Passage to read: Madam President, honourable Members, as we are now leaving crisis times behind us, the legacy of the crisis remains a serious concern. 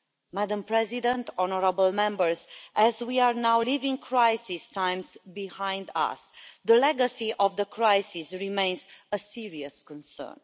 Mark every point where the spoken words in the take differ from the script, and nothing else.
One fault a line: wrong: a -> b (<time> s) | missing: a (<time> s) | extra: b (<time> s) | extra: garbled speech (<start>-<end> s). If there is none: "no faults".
no faults